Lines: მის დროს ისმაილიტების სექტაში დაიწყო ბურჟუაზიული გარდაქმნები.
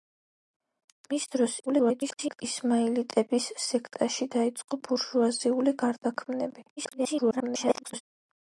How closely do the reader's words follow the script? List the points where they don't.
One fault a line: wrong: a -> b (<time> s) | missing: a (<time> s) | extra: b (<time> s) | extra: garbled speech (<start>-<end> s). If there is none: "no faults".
extra: garbled speech (1.7-2.4 s)
extra: garbled speech (6.8-8.0 s)